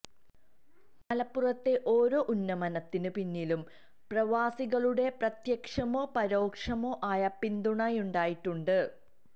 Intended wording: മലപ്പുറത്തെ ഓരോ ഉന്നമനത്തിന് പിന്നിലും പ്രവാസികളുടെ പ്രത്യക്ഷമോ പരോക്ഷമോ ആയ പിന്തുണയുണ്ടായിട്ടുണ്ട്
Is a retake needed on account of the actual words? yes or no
no